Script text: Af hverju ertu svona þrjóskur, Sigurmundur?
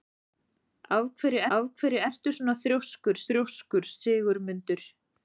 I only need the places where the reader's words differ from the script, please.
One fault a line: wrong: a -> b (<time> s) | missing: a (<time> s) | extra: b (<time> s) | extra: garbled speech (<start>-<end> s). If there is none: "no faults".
extra: af hverju (1.6 s)
extra: þrjóskur (3.3 s)